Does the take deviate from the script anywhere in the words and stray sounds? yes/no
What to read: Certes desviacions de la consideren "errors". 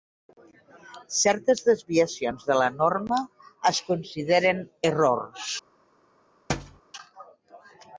yes